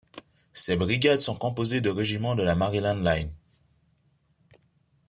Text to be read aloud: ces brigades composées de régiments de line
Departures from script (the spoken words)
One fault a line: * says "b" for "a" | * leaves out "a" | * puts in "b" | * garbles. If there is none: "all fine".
* puts in "sont"
* puts in "la maryland"